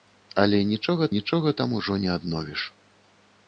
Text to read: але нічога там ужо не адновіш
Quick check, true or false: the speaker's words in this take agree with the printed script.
false